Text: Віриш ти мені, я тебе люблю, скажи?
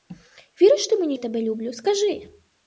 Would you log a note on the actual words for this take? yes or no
no